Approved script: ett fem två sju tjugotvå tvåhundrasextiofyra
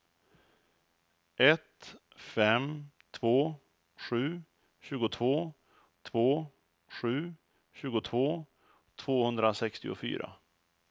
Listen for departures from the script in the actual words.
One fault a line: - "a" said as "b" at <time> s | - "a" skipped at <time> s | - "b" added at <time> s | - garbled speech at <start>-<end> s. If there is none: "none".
- "två sju tjugotvå" added at 6.0 s